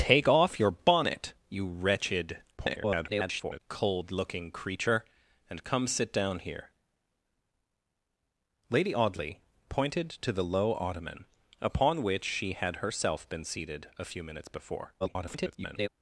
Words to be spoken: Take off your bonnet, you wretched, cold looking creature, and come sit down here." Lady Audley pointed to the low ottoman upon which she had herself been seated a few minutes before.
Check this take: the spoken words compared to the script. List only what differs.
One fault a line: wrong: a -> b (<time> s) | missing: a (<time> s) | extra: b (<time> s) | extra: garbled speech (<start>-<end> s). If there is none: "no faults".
extra: garbled speech (2.6-3.6 s)
extra: garbled speech (15.0-15.9 s)